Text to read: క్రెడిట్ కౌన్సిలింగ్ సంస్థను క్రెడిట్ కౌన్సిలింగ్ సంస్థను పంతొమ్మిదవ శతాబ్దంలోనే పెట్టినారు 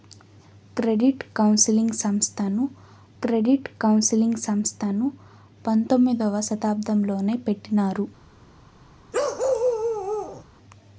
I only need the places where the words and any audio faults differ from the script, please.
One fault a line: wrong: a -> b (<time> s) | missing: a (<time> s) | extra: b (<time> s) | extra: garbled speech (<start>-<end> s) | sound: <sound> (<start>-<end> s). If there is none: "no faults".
sound: bark (9.1-10.4 s)